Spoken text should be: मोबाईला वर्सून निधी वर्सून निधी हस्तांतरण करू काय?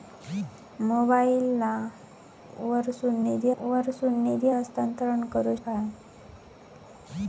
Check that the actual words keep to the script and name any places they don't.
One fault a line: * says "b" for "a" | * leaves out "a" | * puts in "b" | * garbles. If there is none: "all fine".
all fine